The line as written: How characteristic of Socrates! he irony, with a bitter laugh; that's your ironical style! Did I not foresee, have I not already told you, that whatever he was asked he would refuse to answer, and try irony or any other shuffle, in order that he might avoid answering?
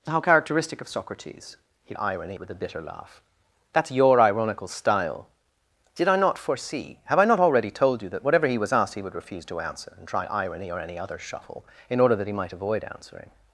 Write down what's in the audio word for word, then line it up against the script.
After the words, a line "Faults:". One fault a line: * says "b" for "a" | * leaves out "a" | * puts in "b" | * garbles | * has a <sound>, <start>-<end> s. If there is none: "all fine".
How characteristic of Socrates! he irony, with a bitter laugh; that's your ironical style! Did I not foresee, have I not already told you, that whatever he was asked he would refuse to answer, and try irony or any other shuffle, in order that he might avoid answering?
Faults:
all fine